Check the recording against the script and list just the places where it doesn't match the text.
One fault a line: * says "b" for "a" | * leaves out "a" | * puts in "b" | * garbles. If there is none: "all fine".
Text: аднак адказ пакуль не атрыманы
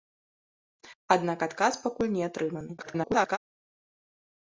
* garbles